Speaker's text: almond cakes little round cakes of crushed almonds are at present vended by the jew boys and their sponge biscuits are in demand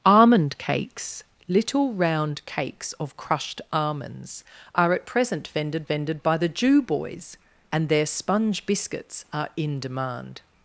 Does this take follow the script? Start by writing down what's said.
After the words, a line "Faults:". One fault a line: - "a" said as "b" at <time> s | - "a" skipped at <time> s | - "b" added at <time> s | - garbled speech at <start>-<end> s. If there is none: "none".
almond cakes little round cakes of crushed almonds are at present vended vended by the jew boys and their sponge biscuits are in demand
Faults:
- "vended" added at 5.8 s